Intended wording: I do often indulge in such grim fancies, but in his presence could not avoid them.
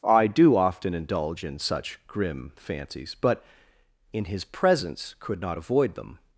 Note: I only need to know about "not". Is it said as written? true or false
true